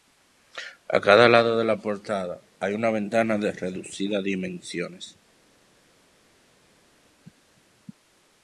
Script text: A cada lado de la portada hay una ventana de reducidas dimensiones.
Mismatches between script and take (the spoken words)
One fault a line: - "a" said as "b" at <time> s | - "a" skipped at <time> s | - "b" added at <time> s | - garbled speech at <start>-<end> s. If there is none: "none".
none